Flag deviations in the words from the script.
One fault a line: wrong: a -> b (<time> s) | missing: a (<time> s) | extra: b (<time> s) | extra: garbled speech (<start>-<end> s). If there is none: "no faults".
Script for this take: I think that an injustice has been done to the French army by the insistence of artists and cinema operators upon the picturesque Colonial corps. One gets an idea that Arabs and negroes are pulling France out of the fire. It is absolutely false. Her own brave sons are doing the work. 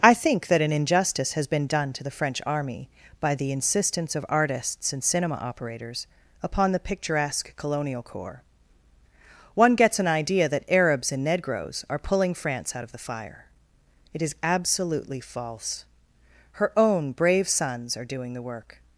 no faults